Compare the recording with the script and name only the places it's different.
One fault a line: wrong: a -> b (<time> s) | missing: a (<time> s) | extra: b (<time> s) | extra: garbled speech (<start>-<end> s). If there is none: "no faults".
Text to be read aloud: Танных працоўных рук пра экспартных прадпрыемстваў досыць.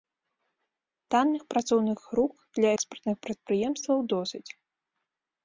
wrong: пра -> для (2.6 s)